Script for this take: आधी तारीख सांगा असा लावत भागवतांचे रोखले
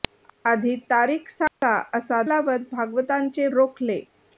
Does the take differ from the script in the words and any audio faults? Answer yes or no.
yes